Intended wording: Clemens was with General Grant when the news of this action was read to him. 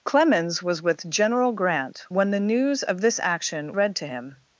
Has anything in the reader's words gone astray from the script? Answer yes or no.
yes